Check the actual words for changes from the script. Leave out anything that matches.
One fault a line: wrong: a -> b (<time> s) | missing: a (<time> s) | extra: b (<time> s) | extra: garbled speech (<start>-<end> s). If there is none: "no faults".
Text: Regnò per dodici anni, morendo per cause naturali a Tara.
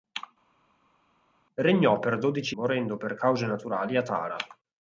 missing: anni (2.6 s)